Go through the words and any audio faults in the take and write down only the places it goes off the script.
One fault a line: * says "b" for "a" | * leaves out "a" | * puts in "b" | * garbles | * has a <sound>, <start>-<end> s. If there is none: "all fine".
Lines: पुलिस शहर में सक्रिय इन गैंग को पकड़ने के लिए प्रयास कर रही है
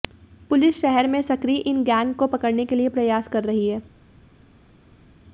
all fine